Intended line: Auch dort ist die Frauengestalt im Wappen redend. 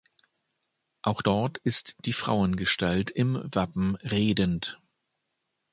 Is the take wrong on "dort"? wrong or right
right